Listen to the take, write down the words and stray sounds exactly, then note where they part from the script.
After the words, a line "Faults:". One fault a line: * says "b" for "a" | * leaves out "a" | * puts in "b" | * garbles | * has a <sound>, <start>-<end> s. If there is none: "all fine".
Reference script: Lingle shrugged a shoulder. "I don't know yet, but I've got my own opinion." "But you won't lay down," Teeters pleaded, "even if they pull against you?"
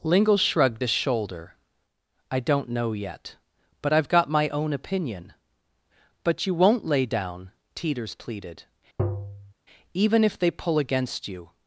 Lingle shrugged a shoulder. "I don't know yet, but I've got my own opinion." "But you won't lay down," Teeters pleaded, "even if they pull against you?"
Faults:
* has a tap, 9.0-9.5 s